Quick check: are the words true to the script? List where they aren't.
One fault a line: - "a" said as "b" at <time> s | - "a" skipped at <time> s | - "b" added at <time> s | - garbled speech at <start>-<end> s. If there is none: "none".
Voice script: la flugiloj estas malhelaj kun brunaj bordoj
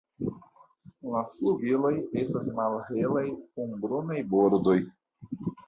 none